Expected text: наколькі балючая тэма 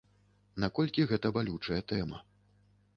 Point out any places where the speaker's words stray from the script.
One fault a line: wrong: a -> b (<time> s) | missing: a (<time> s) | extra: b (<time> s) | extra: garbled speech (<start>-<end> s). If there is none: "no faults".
extra: гэта (1.1 s)